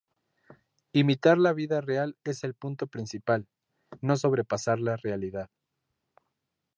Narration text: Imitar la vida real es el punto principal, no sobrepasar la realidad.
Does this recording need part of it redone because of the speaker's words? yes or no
no